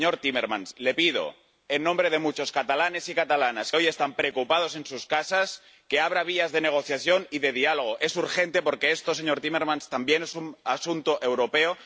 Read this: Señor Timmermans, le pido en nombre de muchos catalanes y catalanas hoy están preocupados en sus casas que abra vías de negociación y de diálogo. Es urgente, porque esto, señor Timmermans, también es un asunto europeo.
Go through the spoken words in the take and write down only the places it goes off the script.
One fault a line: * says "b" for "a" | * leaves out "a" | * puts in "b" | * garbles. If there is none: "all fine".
all fine